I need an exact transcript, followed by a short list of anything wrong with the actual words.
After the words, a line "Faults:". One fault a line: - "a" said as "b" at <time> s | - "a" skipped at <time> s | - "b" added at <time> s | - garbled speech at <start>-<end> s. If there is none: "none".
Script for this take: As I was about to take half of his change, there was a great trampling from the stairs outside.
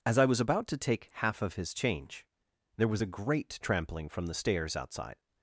As I was about to take half of his change, there was a great trampling from the stairs outside.
Faults:
none